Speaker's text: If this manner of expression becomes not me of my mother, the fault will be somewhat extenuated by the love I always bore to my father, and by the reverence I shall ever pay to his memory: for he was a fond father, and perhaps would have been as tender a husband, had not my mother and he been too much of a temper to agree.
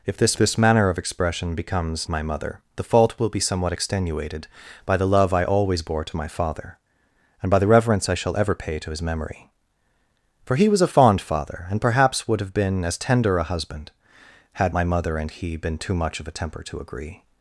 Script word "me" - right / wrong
wrong